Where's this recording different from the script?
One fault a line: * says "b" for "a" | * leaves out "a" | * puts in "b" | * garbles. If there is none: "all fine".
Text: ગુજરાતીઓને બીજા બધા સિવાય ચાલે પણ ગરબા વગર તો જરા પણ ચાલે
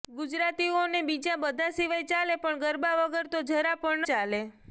all fine